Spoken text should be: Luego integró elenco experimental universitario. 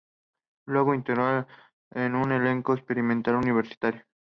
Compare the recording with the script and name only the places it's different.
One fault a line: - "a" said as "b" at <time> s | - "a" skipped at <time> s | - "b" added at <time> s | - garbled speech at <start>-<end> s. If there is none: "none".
- "un" added at 2.1 s